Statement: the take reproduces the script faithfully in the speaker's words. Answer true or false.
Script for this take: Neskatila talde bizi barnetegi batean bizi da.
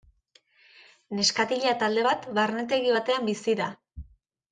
false